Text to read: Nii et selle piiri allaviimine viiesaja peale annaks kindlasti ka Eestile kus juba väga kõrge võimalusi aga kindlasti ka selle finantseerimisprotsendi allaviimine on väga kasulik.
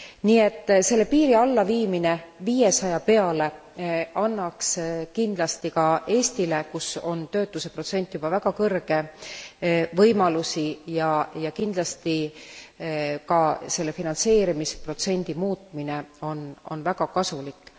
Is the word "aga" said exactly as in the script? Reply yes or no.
no